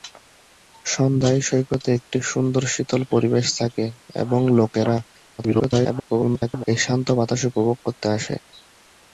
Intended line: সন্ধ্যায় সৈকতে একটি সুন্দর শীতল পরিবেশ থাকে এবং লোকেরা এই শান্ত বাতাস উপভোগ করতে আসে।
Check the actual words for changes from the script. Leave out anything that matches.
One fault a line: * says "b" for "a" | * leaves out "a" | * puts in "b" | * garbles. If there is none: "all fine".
* garbles